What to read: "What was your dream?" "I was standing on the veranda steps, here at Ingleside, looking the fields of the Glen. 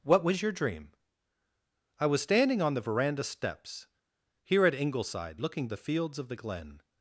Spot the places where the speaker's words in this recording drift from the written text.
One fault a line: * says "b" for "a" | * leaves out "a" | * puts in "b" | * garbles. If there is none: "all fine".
all fine